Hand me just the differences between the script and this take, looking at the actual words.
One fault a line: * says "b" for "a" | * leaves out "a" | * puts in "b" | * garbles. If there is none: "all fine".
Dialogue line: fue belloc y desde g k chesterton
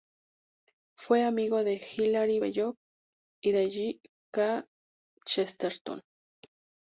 * puts in "amigo de hilaire"
* says "de" for "desde"